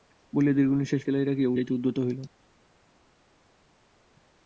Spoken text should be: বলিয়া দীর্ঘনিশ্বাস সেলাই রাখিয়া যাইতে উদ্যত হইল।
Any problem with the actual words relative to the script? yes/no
no